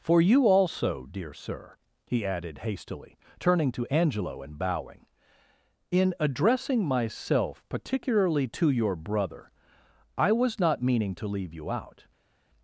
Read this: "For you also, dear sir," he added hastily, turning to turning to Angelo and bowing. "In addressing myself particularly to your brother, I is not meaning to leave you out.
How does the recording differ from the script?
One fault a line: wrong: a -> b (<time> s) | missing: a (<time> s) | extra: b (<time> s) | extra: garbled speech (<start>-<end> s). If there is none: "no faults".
missing: turning to (3.9 s)
wrong: is -> was (10.3 s)